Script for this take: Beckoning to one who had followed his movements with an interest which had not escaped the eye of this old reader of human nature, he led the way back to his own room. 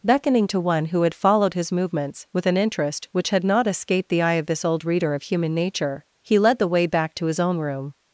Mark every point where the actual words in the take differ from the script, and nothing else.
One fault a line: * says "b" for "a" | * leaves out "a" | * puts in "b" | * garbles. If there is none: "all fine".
all fine